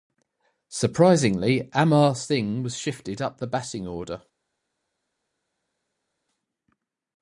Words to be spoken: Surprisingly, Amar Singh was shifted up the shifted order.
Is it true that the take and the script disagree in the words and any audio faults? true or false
true